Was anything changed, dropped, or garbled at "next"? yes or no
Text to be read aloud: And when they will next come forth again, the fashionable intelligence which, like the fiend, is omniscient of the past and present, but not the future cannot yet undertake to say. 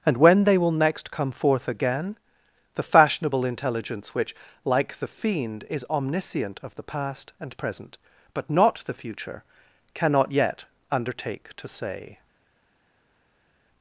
no